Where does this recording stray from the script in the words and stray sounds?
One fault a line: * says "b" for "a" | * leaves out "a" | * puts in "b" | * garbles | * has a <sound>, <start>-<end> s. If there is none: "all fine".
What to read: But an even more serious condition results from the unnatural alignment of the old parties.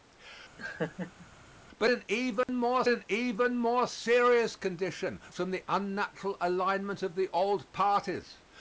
* has a laugh, 0.6-1.3 s
* has a dropout, 2.4-2.5 s
* puts in "an even more"
* leaves out "results"